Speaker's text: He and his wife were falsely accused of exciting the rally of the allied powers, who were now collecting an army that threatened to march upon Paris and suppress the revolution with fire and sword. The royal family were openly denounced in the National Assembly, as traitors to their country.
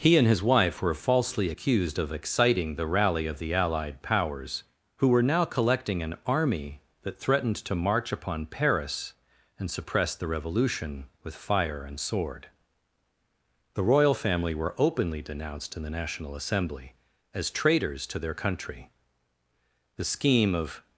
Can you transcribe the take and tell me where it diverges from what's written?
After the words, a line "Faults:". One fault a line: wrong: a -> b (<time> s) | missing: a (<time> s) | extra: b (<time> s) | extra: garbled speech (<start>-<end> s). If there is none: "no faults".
He and his wife were falsely accused of exciting the rally of the allied powers, who were now collecting an army that threatened to march upon Paris and suppress the revolution with fire and sword. The royal family were openly denounced in the National Assembly, as traitors to their country. The scheme of
Faults:
extra: The scheme of (20.0 s)